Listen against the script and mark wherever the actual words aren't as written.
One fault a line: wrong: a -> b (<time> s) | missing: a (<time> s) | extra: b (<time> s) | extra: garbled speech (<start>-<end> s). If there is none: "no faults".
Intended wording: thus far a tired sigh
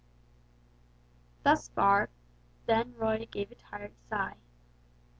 extra: then roy gave (2.6 s)